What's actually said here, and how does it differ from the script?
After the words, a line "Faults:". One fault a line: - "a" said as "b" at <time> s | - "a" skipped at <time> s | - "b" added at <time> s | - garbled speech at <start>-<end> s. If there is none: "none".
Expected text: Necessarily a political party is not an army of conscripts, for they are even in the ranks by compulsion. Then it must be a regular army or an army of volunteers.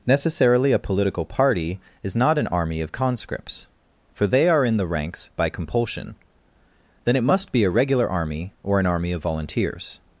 Necessarily a political party is not an army of conscripts, for they are in the ranks by compulsion. Then it must be a regular army or an army of volunteers.
Faults:
- "even" skipped at 4.7 s